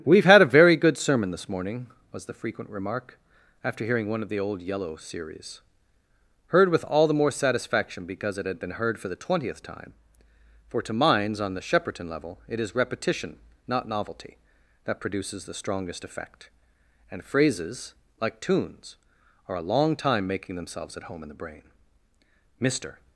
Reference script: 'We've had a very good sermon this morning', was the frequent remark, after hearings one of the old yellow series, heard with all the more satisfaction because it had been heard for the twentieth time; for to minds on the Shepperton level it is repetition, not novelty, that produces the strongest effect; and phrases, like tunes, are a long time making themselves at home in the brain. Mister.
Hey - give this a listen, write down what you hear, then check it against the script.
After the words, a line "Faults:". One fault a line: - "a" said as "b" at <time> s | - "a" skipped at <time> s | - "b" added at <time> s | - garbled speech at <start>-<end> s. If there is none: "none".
'We've had a very good sermon this morning', was the frequent remark, after hearing one of the old yellow series, heard with all the more satisfaction because it had been heard for the twentieth time; for to minds on the Shepperton level it is repetition, not novelty, that produces the strongest effect; and phrases, like tunes, are a long time making themselves at home in the brain. Mister.
Faults:
- "hearings" said as "hearing" at 3.9 s